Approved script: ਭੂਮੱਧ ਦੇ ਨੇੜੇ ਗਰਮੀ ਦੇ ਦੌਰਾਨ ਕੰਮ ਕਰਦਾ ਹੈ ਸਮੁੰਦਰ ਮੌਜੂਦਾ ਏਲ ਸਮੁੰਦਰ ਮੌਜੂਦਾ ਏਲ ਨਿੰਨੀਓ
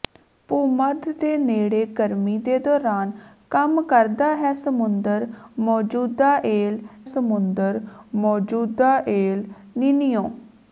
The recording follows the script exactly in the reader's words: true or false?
true